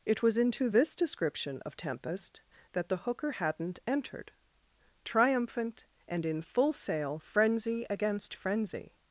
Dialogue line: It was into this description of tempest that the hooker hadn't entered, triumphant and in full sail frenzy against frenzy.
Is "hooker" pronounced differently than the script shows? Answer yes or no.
no